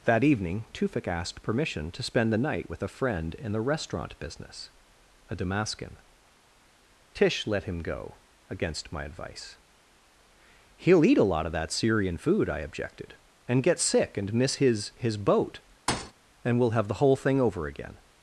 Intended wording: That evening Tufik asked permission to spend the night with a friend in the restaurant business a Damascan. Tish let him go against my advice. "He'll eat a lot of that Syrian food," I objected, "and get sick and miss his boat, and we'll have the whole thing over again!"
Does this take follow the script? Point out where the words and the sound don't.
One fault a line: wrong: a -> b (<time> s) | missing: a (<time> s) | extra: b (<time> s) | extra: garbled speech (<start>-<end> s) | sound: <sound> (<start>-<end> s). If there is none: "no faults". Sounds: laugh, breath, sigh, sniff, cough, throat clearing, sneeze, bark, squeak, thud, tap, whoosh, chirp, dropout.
extra: his (15.0 s)
sound: thud (15.9-16.1 s)